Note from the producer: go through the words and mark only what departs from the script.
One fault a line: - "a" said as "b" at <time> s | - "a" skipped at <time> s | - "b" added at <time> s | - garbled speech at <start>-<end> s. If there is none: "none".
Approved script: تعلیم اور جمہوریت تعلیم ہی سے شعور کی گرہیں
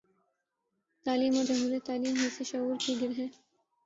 none